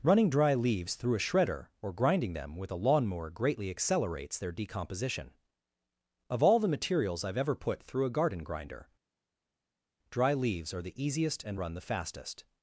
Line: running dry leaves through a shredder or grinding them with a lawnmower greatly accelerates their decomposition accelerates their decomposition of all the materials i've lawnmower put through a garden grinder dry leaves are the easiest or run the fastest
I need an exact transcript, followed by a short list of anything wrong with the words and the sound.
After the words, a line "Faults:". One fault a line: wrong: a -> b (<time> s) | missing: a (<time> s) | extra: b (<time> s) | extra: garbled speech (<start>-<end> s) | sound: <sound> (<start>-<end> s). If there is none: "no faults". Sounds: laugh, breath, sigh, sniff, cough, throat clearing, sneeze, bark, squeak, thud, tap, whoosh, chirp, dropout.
running dry leaves through a shredder or grinding them with a lawnmower greatly accelerates their decomposition of all the materials i've ever put through a garden grinder dry leaves are the easiest and run the fastest
Faults:
missing: accelerates their decomposition (5.3 s)
wrong: lawnmower -> ever (7.4 s)
wrong: or -> and (11.4 s)